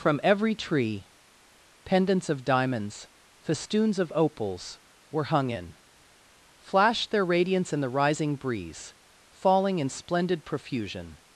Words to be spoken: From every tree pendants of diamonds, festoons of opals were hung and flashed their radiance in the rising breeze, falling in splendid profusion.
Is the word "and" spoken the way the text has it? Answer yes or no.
no